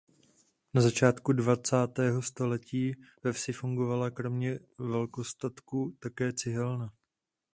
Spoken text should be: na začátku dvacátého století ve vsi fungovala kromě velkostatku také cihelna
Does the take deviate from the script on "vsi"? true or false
false